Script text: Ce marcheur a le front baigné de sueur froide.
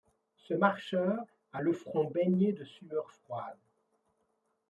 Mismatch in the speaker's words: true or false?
false